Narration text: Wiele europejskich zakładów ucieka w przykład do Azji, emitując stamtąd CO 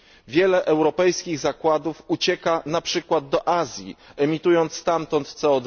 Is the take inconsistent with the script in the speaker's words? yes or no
yes